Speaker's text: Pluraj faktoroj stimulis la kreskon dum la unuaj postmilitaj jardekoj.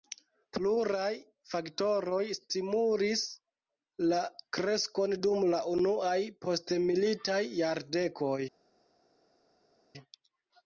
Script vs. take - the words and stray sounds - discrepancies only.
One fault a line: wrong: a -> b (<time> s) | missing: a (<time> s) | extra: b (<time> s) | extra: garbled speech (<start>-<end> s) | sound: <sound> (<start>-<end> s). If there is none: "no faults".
no faults